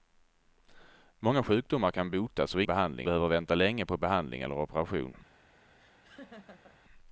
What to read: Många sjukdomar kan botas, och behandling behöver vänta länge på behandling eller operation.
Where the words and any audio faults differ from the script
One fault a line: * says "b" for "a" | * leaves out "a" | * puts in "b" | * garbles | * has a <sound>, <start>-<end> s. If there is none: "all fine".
* has a laugh, 5.8-6.8 s